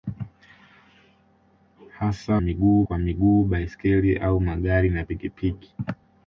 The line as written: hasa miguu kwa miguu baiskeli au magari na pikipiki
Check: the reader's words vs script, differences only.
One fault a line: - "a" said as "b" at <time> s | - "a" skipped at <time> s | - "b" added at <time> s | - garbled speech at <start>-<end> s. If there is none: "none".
none